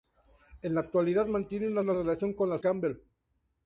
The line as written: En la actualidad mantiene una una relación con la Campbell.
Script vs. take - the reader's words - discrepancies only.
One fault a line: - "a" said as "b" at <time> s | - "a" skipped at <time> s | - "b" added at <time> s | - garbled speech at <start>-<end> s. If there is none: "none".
none